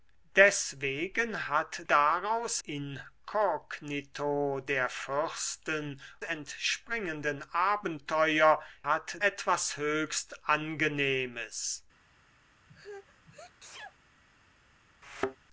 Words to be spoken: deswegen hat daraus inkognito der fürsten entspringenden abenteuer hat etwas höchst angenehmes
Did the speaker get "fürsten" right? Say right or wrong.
right